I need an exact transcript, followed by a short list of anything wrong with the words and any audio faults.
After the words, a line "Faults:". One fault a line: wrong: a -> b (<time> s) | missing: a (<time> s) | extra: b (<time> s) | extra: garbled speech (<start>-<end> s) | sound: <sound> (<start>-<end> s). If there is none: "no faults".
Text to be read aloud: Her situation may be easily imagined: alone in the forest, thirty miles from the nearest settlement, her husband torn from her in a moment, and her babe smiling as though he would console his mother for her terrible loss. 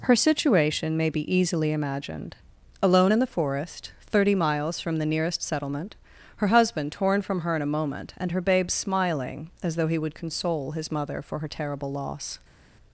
Her situation may be easily imagined: alone in the forest, thirty miles from the nearest settlement, her husband torn from her in a moment, and her babe smiling as though he would console his mother for her terrible loss.
Faults:
no faults